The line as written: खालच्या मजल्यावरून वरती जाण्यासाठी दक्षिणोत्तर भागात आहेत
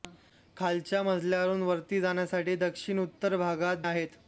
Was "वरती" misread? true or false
false